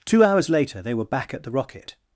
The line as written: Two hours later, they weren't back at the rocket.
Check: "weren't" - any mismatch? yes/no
yes